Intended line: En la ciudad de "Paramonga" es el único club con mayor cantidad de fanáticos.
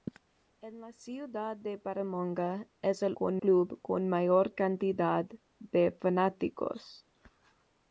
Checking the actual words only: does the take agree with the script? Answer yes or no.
no